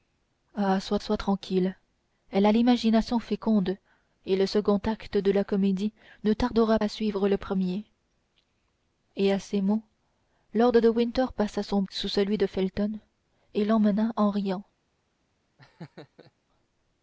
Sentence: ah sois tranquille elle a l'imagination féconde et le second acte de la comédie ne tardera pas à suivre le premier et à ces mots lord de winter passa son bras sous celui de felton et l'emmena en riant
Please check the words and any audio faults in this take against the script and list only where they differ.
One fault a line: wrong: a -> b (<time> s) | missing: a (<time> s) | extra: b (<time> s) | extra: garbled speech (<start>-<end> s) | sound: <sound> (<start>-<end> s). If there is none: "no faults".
extra: sois (1.0 s)
missing: pas (6.8 s)
missing: bras (11.8 s)
sound: laugh (15.6-16.3 s)